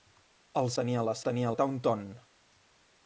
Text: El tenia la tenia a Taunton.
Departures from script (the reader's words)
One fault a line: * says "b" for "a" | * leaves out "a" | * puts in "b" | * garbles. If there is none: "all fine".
all fine